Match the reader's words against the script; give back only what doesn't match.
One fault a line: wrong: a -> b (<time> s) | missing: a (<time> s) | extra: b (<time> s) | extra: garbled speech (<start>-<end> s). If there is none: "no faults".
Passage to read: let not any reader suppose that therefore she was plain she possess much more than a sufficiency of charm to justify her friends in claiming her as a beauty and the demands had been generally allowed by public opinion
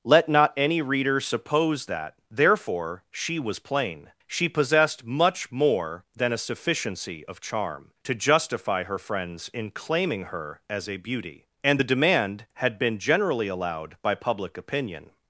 wrong: possess -> possessed (4.5 s)
wrong: demands -> demand (11.8 s)